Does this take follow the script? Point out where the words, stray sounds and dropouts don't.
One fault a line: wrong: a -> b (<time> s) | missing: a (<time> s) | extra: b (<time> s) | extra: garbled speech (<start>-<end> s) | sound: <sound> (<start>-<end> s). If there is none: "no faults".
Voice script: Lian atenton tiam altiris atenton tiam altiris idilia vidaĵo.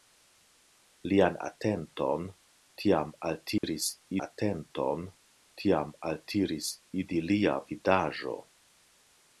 sound: dropout (3.6-3.6 s)